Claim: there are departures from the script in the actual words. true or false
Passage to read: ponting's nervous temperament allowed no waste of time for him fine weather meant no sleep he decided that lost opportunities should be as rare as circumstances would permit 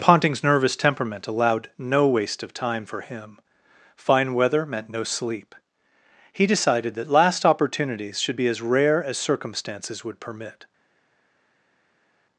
true